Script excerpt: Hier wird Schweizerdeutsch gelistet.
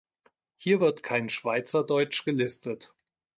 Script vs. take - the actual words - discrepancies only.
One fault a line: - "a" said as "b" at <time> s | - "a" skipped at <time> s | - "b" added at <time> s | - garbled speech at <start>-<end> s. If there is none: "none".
- "kein" added at 1.0 s